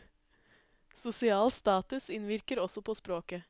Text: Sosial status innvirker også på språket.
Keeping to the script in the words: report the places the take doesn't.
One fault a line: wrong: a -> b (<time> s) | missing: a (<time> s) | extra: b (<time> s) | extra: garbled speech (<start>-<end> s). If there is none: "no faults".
no faults